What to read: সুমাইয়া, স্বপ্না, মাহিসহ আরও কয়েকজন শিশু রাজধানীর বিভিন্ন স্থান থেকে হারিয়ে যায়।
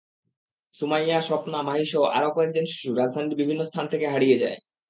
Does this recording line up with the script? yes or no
yes